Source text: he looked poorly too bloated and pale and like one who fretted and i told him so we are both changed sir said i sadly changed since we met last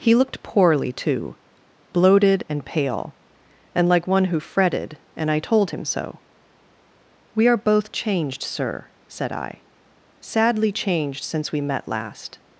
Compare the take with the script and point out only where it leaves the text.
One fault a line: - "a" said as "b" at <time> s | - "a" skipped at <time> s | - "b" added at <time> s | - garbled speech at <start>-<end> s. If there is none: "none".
none